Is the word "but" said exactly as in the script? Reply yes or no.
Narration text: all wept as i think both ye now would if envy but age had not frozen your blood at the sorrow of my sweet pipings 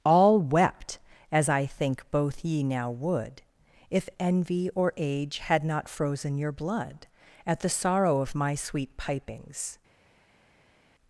no